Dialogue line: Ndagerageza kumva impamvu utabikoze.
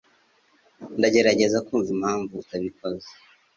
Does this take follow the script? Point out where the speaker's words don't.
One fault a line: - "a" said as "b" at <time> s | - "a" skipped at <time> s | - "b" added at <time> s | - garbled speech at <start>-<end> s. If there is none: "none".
none